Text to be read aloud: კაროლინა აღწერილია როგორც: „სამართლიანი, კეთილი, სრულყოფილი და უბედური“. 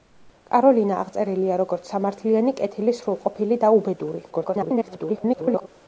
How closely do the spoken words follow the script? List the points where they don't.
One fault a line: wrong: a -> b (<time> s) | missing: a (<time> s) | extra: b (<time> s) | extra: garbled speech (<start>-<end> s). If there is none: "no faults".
extra: garbled speech (4.3-5.7 s)